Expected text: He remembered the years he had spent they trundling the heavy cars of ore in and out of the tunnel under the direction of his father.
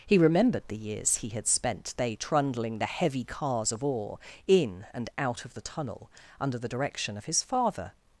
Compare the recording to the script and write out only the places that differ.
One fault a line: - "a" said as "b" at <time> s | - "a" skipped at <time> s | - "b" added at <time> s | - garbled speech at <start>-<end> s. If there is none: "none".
none